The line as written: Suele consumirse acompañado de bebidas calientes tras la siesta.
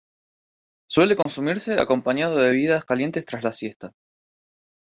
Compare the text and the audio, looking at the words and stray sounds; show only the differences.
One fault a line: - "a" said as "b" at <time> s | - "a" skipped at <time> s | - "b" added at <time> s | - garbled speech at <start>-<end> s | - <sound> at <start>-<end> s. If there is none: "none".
- dropout at 1.2-1.3 s